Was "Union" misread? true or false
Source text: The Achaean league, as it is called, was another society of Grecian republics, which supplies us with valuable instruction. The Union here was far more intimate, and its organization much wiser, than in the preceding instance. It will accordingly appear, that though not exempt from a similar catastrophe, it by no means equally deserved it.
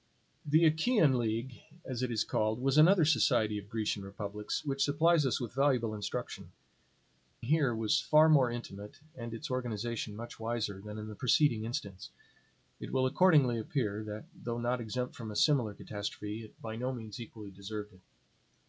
true